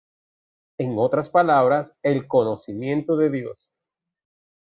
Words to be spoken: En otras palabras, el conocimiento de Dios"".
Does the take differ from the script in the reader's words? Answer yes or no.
no